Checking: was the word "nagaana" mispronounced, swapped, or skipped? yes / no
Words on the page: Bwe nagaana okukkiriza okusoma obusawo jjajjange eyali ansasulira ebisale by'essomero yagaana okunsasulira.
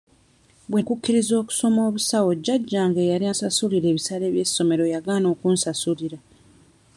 yes